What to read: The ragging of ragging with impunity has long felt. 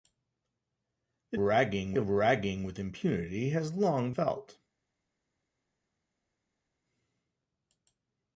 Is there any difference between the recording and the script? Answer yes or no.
no